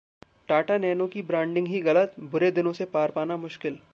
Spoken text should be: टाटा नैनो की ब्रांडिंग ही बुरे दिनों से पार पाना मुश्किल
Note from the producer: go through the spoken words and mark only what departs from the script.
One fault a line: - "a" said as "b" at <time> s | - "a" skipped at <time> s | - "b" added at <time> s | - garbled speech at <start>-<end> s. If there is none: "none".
- "गलत" added at 1.8 s